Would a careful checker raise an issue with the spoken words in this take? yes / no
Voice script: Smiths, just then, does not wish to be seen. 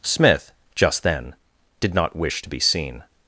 yes